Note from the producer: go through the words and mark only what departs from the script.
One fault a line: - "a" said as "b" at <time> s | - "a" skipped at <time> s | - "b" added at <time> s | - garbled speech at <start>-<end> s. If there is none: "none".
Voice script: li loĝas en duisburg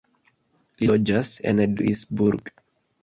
none